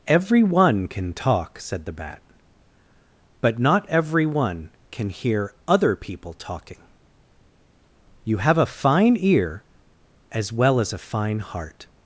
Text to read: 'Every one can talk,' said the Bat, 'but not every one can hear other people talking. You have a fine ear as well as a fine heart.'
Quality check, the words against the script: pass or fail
pass